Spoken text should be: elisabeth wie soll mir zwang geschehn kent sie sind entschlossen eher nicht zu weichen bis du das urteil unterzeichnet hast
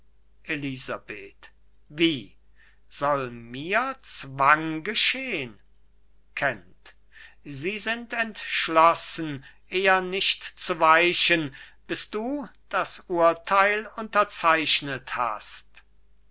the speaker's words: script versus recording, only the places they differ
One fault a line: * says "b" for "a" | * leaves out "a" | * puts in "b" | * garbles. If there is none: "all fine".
all fine